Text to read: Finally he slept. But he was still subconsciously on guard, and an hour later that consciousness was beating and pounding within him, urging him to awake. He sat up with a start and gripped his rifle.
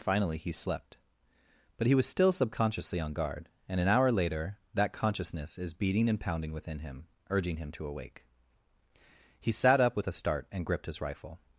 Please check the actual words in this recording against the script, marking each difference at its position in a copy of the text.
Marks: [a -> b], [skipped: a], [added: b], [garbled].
Finally he slept. But he was still subconsciously on guard, and an hour later that consciousness [was -> is] beating and pounding within him, urging him to awake. He sat up with a start and gripped his rifle.